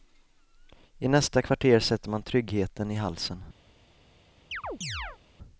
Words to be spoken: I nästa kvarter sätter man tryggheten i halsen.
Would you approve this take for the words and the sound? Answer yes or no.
no